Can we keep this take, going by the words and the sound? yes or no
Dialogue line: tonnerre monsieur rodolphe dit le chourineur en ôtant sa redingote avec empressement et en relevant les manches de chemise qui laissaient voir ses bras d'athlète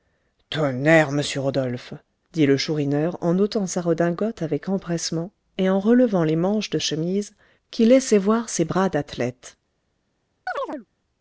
no